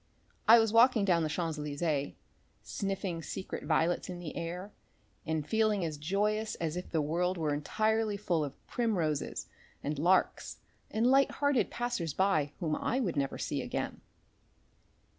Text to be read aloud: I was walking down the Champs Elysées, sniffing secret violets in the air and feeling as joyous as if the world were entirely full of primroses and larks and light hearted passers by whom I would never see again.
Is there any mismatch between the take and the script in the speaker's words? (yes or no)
no